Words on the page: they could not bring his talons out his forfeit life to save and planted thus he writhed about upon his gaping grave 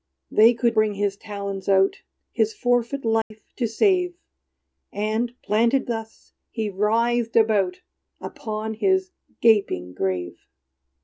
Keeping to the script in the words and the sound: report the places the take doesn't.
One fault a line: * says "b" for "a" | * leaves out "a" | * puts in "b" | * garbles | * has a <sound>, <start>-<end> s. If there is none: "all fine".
* leaves out "not"
* has a dropout, 3.2-3.3 s